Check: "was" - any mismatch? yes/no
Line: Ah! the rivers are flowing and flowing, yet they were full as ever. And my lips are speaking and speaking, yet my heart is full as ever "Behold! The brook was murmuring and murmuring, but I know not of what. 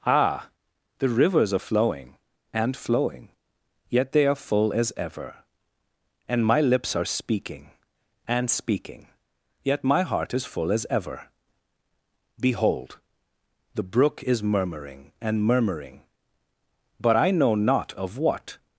yes